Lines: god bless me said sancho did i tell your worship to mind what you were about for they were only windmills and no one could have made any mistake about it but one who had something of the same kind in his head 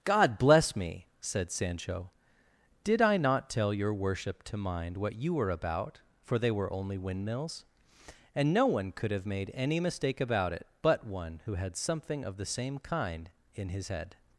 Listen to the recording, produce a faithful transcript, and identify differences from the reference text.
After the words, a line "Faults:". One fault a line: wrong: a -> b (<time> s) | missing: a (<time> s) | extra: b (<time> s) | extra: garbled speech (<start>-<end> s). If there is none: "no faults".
god bless me said sancho did i not tell your worship to mind what you were about for they were only windmills and no one could have made any mistake about it but one who had something of the same kind in his head
Faults:
extra: not (3.2 s)